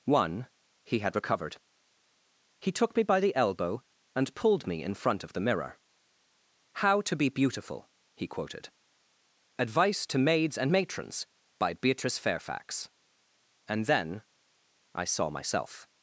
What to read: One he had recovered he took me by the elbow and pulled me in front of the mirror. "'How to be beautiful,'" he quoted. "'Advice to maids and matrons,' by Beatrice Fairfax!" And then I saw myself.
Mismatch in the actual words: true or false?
false